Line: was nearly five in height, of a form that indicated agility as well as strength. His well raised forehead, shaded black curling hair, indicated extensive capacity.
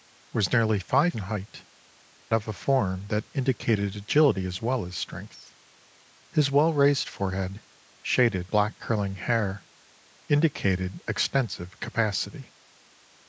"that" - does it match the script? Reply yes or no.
yes